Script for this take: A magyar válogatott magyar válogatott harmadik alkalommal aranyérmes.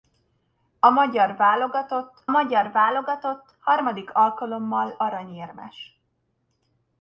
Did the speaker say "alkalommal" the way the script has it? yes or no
yes